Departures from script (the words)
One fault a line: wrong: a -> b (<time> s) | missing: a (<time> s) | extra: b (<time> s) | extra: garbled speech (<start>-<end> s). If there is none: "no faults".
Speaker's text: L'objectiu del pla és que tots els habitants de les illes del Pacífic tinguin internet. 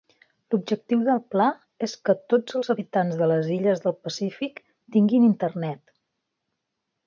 no faults